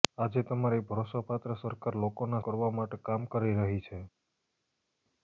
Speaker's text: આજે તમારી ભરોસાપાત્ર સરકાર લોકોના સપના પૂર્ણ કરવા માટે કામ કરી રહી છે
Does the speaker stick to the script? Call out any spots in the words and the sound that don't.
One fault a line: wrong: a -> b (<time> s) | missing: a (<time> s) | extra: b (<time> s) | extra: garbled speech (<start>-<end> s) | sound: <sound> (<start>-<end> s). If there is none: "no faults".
missing: સપના પૂર્ણ (2.4 s)